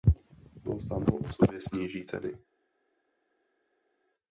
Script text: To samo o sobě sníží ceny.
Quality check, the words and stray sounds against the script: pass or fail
pass